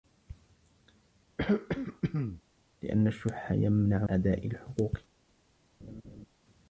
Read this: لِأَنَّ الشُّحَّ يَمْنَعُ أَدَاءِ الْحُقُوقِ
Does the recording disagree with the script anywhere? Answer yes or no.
no